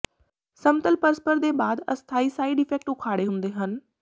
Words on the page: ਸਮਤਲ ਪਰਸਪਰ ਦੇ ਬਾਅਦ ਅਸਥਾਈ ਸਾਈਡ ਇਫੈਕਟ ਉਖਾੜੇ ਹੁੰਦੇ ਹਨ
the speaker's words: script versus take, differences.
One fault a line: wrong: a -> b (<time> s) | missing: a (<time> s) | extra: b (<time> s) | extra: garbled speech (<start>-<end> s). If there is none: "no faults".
no faults